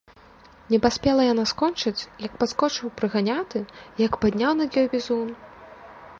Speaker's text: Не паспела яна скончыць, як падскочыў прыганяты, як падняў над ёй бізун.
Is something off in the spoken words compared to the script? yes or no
no